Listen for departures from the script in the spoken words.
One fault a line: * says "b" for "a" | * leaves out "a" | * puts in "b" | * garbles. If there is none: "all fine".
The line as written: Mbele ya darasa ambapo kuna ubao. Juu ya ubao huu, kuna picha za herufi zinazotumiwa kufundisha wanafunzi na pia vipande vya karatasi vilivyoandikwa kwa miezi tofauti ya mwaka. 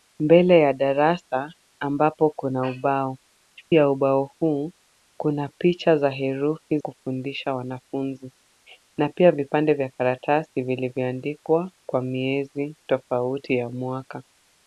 * leaves out "Juu"
* leaves out "zinazotumiwa"